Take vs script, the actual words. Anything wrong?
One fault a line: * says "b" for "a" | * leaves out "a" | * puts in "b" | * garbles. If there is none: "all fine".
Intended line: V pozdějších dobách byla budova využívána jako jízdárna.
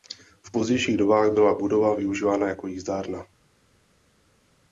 all fine